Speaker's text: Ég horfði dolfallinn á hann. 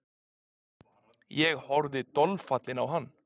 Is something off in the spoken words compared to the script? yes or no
no